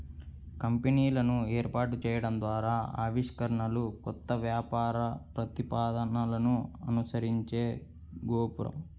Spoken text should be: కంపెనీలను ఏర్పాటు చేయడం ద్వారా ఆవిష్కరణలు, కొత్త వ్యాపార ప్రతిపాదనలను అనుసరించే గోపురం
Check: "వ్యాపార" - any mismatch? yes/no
no